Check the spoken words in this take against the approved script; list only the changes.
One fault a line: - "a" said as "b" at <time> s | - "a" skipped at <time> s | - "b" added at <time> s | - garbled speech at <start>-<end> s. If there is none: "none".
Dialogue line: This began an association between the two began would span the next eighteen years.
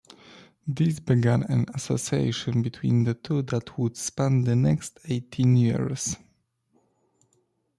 - "began" said as "that" at 3.4 s